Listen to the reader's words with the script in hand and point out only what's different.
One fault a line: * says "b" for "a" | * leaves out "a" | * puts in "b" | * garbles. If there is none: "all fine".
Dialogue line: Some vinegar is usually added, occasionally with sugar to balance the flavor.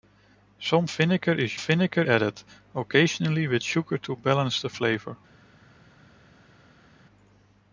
* says "vinegar" for "usually"